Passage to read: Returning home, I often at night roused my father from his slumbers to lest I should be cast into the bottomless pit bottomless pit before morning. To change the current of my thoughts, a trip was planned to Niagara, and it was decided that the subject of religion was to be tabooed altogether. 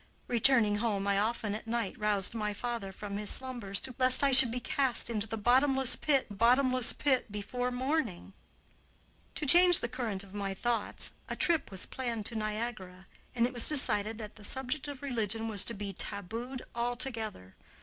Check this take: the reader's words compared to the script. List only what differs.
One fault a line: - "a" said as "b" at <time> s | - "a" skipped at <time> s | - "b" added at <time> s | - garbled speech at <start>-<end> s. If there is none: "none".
none